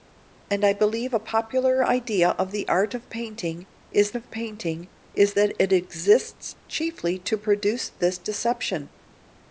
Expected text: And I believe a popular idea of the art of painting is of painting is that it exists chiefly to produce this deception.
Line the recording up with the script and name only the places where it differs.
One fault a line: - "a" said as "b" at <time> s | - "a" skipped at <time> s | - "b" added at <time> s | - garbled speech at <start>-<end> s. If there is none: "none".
none